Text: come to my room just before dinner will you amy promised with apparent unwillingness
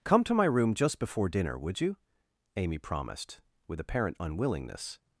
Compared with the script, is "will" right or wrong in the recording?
wrong